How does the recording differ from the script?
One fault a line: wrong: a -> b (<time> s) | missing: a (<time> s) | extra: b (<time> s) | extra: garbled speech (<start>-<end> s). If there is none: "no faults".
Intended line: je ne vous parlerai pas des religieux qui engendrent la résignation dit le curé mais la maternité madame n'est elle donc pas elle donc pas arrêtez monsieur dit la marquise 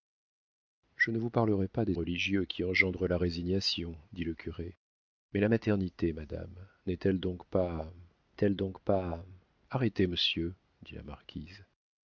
no faults